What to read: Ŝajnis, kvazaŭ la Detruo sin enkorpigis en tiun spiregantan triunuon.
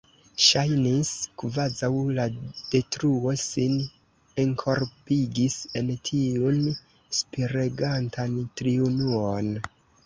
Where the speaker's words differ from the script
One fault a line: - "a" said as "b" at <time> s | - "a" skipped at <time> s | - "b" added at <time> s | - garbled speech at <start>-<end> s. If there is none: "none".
none